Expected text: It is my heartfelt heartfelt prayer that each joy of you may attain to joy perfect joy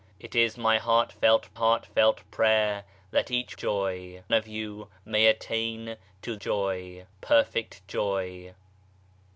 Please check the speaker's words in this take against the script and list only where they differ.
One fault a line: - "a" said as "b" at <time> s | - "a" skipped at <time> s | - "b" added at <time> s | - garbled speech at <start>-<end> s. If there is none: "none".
none